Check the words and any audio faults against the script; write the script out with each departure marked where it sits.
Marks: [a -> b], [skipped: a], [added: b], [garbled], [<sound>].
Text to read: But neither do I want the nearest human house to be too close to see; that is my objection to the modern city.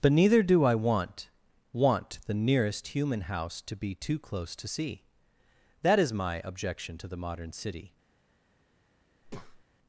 But neither do I want [added: want] the nearest human house to be too close to see; that is my objection to the modern city. [breath]